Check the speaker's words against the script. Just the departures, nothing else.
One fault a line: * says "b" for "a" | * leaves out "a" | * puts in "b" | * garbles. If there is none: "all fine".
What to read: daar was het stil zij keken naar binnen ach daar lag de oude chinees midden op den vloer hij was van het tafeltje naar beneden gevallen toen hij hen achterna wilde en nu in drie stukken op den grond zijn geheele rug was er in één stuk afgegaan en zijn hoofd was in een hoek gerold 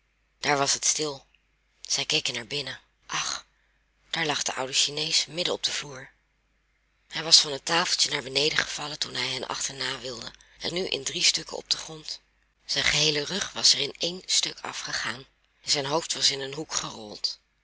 all fine